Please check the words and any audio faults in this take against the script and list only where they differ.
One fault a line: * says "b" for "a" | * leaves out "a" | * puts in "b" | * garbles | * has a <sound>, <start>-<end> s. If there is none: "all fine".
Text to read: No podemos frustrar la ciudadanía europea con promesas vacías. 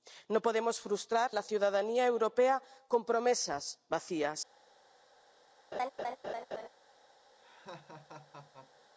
* has a laugh, 5.7-6.7 s
* has a laugh, 7.4-8.9 s